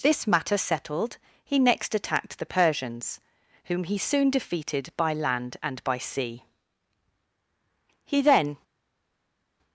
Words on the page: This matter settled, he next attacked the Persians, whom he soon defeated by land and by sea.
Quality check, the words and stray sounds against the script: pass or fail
fail